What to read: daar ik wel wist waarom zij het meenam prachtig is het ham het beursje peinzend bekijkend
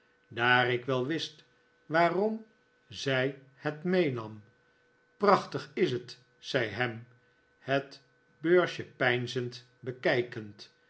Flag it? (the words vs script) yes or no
yes